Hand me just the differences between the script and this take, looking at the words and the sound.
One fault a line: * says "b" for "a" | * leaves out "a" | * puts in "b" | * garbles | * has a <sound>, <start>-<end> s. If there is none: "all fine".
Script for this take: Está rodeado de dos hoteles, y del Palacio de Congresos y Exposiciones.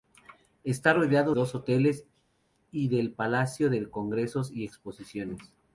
* leaves out "de"